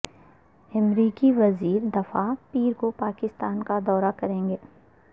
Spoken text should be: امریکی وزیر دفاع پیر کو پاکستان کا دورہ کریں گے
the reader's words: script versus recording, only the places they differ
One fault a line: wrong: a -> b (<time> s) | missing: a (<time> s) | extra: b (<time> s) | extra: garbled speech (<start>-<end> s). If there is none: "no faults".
no faults